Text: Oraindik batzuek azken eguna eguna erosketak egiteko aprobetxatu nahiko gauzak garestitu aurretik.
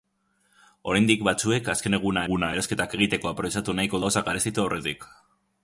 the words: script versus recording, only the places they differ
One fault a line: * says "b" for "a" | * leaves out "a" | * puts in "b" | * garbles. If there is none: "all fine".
all fine